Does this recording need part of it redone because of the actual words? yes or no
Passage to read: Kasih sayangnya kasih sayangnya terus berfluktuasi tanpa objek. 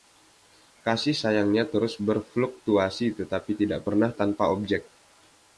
yes